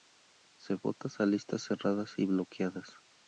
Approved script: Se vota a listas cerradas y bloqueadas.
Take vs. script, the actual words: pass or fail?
pass